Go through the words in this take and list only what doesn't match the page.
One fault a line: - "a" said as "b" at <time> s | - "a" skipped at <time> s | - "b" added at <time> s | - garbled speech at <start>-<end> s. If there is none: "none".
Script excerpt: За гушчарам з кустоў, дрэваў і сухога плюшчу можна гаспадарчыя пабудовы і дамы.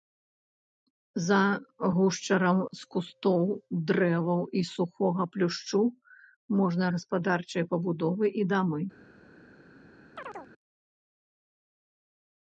none